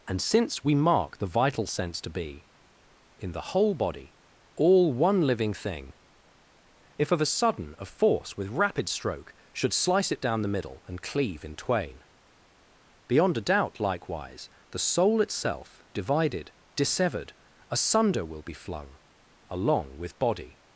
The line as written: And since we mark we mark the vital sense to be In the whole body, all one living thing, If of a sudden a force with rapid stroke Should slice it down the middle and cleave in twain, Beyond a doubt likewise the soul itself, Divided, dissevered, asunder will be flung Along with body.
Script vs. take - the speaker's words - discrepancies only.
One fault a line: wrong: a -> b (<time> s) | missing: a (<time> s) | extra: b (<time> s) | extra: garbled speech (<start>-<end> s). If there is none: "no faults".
missing: we mark (1.2 s)